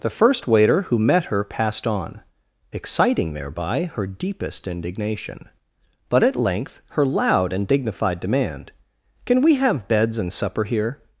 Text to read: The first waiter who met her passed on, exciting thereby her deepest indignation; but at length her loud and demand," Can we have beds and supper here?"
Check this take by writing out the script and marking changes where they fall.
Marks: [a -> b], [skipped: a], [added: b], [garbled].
The first waiter who met her passed on, exciting thereby her deepest indignation; but at length her loud and [added: dignified] demand," Can we have beds and supper here?"